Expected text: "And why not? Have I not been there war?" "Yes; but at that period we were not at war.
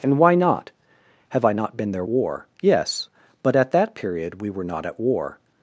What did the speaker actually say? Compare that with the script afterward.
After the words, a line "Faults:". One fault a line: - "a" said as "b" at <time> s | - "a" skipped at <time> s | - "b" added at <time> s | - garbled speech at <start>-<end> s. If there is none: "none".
"And why not? Have I not been there war?" "Yes; but at that period we were not at war.
Faults:
none